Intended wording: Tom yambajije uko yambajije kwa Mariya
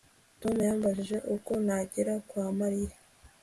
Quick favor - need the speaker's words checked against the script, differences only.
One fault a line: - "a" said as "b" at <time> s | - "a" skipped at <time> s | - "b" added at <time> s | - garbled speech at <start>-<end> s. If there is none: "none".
- "yambajije" said as "nagera" at 1.6 s